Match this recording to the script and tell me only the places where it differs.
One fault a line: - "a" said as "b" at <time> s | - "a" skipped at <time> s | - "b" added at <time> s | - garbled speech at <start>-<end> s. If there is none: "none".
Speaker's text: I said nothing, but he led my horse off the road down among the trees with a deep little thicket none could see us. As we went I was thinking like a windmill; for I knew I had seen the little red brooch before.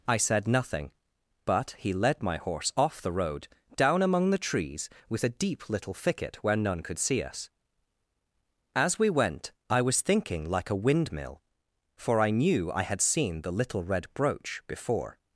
- "where" added at 6.4 s